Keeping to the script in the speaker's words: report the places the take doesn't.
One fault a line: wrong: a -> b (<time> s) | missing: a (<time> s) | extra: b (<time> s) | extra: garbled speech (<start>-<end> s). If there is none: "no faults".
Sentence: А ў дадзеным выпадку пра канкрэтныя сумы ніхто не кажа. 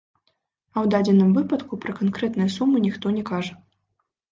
no faults